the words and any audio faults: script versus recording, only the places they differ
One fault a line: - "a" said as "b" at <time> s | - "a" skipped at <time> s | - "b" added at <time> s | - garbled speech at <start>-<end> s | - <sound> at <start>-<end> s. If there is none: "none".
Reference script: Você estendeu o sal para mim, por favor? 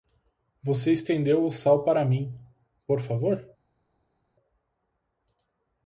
none